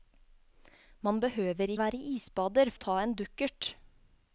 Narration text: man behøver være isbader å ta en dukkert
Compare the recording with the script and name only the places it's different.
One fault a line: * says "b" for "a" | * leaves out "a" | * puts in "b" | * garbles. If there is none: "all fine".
all fine